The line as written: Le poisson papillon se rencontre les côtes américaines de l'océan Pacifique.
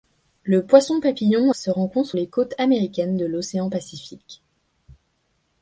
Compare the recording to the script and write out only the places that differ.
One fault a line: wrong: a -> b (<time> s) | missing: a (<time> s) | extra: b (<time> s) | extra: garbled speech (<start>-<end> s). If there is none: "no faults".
no faults